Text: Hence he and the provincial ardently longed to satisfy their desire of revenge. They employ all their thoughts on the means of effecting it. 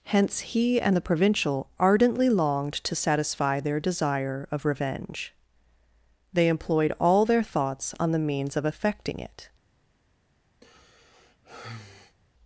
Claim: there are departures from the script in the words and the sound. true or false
true